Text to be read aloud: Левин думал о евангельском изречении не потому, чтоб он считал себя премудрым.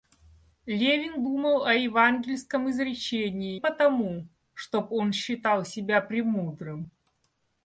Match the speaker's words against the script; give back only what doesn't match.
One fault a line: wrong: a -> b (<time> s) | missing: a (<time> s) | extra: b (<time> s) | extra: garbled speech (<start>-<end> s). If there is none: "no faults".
missing: не (3.6 s)